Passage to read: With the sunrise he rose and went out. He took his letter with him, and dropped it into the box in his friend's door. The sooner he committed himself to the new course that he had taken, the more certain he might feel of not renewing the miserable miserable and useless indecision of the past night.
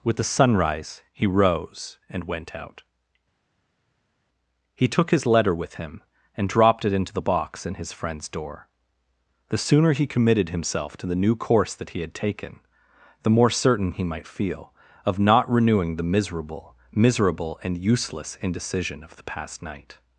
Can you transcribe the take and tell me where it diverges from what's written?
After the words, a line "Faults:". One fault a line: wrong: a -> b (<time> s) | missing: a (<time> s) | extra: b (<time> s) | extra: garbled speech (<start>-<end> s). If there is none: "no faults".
With the sunrise he rose and went out. He took his letter with him, and dropped it into the box in his friend's door. The sooner he committed himself to the new course that he had taken, the more certain he might feel of not renewing the miserable miserable and useless indecision of the past night.
Faults:
no faults